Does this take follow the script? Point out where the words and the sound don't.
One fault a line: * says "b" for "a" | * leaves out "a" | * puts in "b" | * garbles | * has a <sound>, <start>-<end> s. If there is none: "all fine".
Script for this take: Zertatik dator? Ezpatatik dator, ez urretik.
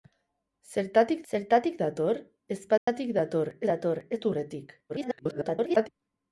* puts in "zertatik"
* has a dropout, 2.8-2.9 s
* puts in "dator"
* garbles